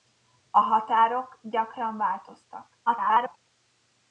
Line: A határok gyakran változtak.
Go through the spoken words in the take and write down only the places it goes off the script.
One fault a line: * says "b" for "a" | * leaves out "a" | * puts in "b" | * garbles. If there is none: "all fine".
* garbles